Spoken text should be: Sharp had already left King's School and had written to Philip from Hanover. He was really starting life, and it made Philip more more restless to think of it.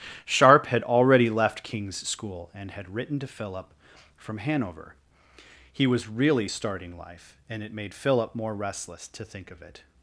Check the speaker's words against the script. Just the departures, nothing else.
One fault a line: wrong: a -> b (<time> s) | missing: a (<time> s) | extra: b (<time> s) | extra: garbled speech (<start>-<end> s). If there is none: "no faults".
missing: more (8.5 s)